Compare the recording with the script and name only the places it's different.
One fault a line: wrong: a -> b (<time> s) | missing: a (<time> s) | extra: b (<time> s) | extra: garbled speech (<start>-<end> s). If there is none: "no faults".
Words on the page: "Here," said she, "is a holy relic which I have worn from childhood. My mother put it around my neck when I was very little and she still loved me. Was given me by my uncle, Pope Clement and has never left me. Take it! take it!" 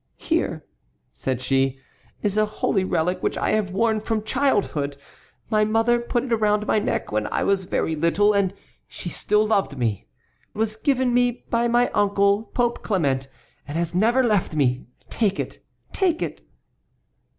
no faults